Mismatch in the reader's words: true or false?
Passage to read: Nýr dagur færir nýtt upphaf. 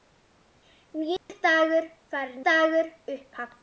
true